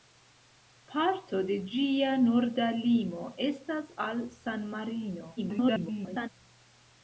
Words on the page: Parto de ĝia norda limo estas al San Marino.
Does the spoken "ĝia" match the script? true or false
true